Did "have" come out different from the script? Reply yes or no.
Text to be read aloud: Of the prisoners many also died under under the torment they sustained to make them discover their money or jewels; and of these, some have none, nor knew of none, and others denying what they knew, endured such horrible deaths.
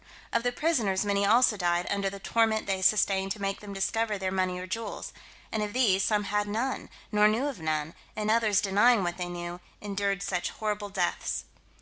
yes